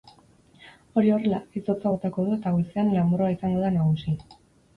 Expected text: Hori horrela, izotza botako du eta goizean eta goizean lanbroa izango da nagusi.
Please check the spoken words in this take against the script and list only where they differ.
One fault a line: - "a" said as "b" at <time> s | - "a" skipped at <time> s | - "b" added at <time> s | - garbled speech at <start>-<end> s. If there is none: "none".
- "eta goizean" skipped at 2.9 s